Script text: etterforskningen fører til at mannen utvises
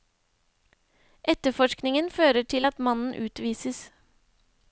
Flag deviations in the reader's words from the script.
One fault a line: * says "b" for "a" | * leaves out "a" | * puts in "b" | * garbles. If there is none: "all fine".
all fine